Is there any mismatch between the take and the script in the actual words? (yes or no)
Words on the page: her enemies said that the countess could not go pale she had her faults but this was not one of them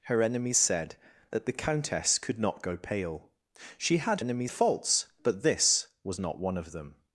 yes